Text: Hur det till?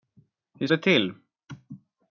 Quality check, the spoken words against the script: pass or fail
pass